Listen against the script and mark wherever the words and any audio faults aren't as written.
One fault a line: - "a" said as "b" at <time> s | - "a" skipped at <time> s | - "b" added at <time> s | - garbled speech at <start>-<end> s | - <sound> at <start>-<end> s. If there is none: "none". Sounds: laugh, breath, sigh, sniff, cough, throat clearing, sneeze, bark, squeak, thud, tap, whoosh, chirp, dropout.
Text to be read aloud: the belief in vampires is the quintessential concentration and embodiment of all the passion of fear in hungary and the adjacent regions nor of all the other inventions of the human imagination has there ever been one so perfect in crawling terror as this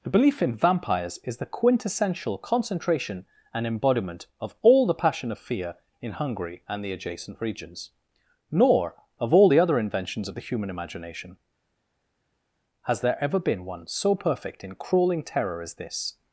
none